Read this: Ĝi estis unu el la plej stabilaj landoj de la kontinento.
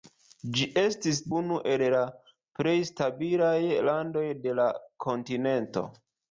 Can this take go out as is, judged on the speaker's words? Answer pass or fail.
pass